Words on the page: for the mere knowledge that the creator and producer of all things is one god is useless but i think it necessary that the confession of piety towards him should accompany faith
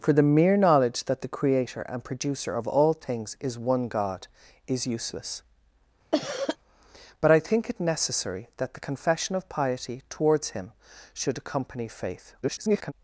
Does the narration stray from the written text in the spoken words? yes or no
yes